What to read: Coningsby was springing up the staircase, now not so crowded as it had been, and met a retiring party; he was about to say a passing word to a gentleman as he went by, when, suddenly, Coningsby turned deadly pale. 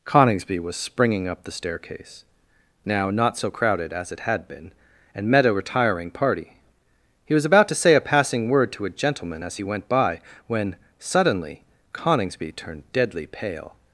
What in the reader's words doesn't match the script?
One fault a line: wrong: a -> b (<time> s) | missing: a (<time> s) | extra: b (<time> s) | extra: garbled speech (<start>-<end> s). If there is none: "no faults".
no faults